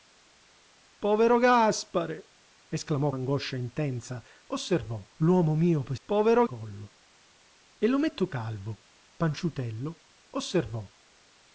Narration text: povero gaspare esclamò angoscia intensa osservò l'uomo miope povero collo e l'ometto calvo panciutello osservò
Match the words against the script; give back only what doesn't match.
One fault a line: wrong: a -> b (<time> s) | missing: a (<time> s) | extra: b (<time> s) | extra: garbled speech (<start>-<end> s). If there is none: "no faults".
no faults